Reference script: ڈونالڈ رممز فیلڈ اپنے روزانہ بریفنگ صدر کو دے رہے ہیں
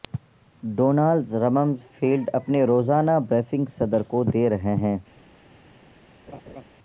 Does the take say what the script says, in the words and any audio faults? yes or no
no